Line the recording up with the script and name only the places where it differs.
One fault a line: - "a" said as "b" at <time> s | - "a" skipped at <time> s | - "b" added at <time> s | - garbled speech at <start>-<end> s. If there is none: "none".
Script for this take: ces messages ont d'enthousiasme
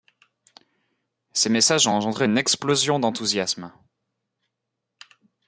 - "engendré une explosion" added at 1.9 s